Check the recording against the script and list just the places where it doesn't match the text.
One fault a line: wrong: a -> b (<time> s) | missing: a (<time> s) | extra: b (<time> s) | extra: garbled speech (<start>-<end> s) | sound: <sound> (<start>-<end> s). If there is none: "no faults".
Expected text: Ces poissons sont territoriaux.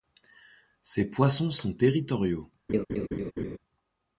sound: laugh (2.7-3.6 s)